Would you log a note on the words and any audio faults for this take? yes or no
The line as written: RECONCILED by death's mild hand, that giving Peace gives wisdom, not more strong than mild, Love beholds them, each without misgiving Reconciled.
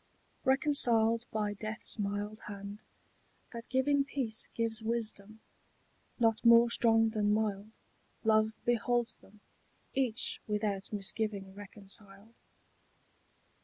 no